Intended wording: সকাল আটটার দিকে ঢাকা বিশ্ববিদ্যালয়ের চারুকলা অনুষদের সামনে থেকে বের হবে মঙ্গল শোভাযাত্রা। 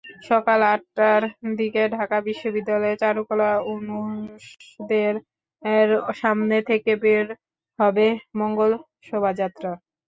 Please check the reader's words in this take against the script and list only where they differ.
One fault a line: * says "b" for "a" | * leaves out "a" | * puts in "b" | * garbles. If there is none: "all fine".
all fine